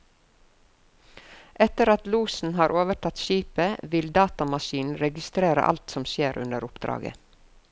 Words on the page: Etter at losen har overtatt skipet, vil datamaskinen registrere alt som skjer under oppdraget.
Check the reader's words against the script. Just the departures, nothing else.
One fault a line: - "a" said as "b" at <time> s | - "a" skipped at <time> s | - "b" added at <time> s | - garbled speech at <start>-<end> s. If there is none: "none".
none